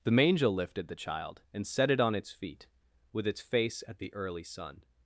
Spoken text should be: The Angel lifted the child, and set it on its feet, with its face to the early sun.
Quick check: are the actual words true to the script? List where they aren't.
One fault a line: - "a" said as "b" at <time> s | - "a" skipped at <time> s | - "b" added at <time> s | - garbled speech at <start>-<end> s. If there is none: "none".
- "to" said as "at" at 3.9 s